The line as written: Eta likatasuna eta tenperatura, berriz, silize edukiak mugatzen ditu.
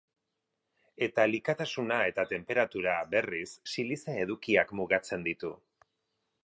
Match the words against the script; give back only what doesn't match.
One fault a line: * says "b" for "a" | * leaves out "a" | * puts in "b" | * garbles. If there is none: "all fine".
all fine